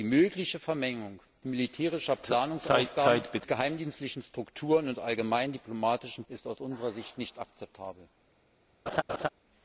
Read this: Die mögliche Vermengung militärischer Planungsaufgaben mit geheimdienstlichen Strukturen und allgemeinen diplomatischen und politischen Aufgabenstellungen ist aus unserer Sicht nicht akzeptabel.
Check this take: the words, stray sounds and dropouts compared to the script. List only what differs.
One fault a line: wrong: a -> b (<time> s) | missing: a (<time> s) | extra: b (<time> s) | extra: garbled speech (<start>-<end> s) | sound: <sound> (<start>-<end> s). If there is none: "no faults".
missing: und politischen Aufgabenstellungen (6.2 s)
sound: laugh (8.9-9.3 s)